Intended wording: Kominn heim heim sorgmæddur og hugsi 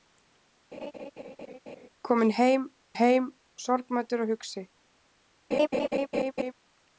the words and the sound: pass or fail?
fail